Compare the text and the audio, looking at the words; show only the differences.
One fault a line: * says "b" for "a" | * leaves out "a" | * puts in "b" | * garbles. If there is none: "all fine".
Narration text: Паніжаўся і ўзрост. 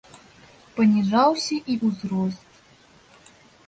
all fine